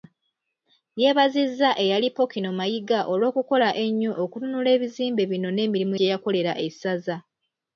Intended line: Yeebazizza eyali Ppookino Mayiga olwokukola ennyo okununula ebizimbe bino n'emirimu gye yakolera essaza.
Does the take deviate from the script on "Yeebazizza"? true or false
false